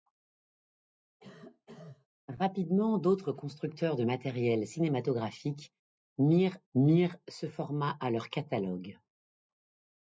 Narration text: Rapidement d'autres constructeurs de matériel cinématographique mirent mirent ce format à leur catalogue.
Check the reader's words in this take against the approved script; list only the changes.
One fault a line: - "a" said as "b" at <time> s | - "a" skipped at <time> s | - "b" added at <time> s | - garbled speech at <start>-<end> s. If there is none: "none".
none